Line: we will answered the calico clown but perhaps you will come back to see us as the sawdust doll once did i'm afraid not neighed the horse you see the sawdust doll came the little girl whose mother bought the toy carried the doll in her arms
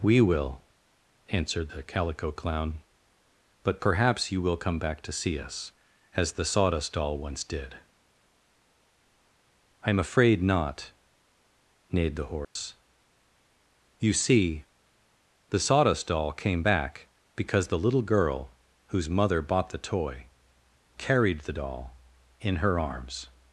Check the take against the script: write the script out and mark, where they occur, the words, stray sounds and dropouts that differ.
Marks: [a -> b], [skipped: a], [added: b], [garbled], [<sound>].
we will answered the calico clown but perhaps you will come back to see us as the sawdust doll once did i'm afraid not neighed the horse [dropout] you see the sawdust doll came [added: back because] the little girl whose mother bought the toy carried the doll in her arms